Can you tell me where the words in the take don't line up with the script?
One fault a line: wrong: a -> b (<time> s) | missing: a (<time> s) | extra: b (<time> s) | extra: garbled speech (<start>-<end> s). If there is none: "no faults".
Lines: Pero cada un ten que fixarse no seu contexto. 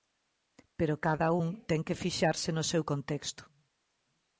no faults